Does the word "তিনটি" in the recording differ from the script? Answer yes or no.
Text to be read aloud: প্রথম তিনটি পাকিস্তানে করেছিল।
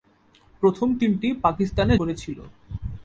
no